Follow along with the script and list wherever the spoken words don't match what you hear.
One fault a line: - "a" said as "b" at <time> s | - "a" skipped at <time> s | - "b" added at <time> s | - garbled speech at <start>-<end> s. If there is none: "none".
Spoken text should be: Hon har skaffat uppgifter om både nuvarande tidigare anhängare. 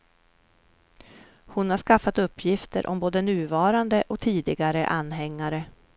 - "och" added at 4.1 s